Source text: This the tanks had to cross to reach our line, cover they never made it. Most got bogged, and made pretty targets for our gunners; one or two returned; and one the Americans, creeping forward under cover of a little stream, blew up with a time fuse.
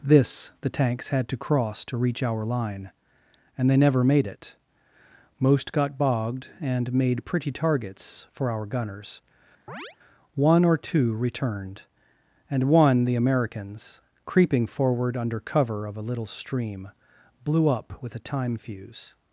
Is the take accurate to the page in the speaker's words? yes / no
no